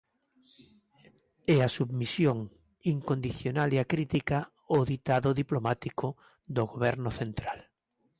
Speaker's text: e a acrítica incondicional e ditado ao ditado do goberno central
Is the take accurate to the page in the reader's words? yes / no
no